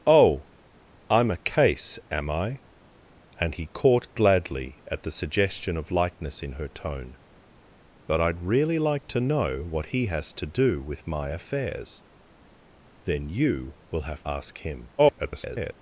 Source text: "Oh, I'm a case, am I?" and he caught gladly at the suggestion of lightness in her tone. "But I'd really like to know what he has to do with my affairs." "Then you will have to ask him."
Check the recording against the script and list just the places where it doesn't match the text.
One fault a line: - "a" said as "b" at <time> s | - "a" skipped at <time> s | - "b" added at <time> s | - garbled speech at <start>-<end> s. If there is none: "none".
- "to" skipped at 14.2 s
- garbled speech at 15.0-15.7 s